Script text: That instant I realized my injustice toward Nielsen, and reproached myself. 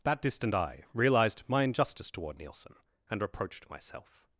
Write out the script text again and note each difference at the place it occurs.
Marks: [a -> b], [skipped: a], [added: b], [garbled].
That [instant -> distant] I realized my injustice toward Nielsen, and reproached myself.